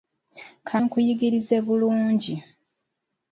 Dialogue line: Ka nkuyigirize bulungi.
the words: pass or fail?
pass